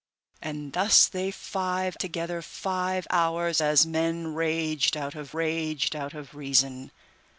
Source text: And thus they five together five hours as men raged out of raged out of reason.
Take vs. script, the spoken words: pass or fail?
pass